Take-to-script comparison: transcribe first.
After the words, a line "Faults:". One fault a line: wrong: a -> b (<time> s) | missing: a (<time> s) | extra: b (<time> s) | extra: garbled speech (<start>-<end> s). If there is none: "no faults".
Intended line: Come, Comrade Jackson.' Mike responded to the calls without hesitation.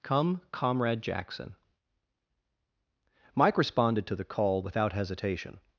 Come, Comrade Jackson.' Mike responded to the call without hesitation.
Faults:
wrong: calls -> call (4.2 s)